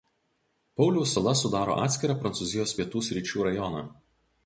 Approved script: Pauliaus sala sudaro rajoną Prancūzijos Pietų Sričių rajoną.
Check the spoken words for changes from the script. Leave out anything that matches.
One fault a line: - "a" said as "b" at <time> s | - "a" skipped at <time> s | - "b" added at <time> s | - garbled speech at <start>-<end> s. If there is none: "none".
- "rajoną" said as "atskirą" at 1.9 s